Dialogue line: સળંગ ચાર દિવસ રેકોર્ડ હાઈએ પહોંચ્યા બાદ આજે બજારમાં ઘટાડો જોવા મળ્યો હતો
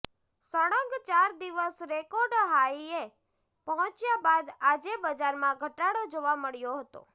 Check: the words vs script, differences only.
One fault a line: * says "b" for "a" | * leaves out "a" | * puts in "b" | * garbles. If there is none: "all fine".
all fine